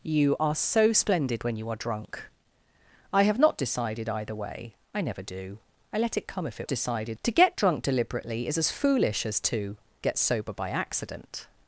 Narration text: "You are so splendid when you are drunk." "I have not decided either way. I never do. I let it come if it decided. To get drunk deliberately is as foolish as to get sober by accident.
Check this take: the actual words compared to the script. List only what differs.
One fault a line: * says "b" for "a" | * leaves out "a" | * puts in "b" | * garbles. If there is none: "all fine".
all fine